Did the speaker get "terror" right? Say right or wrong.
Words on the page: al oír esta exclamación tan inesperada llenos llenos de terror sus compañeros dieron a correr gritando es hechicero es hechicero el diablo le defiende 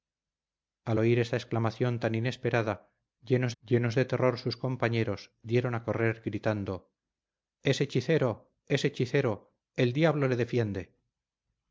right